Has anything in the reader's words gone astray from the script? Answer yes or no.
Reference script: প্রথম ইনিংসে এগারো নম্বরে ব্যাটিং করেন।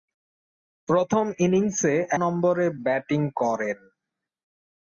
yes